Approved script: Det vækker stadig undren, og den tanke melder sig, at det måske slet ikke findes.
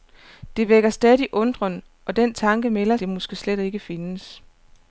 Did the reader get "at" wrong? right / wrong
wrong